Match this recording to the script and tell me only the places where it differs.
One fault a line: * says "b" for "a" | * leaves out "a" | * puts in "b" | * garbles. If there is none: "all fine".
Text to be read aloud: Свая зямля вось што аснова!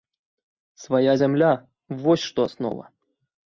all fine